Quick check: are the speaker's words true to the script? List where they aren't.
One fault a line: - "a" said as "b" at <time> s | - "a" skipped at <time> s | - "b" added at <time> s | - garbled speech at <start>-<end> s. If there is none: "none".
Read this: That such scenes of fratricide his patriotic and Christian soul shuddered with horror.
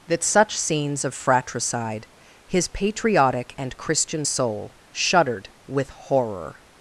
none